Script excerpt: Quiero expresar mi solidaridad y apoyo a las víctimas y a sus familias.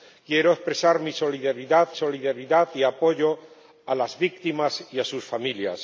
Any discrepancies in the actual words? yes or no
yes